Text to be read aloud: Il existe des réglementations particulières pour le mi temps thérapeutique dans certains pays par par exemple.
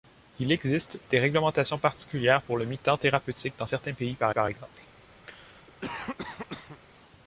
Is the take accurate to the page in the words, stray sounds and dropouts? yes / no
no